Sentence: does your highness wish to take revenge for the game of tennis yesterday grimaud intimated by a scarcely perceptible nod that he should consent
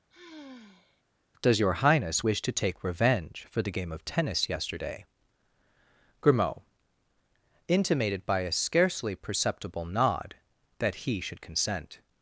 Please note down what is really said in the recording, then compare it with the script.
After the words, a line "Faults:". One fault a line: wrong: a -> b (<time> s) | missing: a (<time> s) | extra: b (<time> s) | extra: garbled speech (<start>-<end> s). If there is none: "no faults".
does your highness wish to take revenge for the game of tennis yesterday grimaud intimated by a scarcely perceptible nod that he should consent
Faults:
no faults